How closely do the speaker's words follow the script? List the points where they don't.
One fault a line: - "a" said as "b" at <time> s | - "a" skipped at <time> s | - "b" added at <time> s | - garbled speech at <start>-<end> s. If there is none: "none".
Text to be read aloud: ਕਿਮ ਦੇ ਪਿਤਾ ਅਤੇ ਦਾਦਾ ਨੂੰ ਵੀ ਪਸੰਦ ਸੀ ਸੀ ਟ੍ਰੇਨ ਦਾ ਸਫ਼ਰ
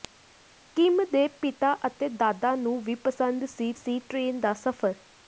none